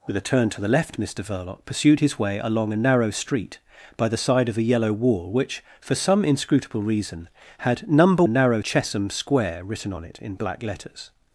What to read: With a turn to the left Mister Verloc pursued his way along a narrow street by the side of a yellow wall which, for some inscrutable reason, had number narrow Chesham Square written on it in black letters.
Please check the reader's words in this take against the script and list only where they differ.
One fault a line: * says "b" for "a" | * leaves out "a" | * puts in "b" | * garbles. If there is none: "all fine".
all fine